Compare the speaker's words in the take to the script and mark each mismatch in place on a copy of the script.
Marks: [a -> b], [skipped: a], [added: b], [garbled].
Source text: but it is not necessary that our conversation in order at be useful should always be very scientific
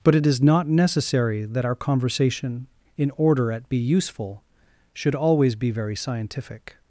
but it is not necessary that our conversation in order at be useful should always be very scientific